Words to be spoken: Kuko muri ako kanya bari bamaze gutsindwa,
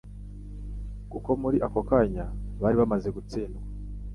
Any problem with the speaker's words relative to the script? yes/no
no